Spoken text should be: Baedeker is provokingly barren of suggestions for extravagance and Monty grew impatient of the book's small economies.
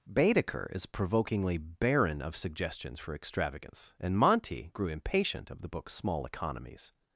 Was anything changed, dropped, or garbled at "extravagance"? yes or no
no